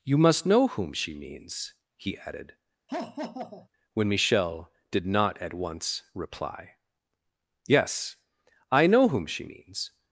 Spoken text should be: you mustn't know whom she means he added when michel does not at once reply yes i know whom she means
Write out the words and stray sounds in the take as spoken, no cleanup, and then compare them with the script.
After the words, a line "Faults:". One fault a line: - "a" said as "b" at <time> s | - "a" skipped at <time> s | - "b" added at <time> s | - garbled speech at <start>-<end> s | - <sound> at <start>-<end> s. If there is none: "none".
you must know whom she means he added when michel did not at once reply yes i know whom she means
Faults:
- "mustn't" said as "must" at 0.2 s
- laugh at 2.9-3.7 s
- "does" said as "did" at 4.9 s